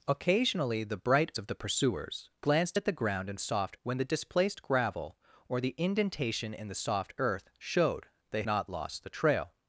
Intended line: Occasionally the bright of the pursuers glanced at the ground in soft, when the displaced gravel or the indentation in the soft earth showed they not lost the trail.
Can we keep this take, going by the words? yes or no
yes